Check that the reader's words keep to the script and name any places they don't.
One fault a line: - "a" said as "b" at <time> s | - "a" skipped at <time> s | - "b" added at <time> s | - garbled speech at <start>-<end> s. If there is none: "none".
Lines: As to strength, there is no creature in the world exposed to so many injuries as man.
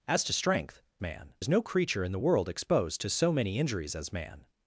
- "there" said as "man" at 1.0 s